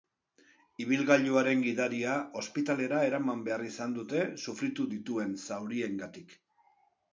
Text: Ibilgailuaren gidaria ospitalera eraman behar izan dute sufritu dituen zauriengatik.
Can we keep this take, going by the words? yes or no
yes